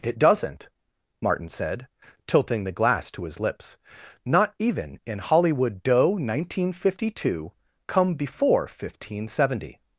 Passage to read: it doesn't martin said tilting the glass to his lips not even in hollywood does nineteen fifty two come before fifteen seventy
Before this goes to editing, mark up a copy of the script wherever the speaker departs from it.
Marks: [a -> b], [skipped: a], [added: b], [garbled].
it doesn't martin said tilting the glass to his lips not even in hollywood [does -> doe] nineteen fifty two come before fifteen seventy